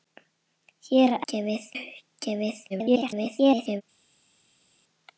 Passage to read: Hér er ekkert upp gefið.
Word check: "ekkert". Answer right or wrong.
wrong